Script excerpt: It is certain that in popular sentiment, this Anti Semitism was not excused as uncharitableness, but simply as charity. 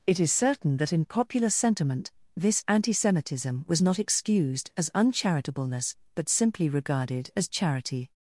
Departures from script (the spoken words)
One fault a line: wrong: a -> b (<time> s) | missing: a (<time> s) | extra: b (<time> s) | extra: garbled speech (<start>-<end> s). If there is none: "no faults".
extra: regarded (6.7 s)